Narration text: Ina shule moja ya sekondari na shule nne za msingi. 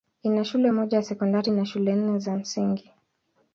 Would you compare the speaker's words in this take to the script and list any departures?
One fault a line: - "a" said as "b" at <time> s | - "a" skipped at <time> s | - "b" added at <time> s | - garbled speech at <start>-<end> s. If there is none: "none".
none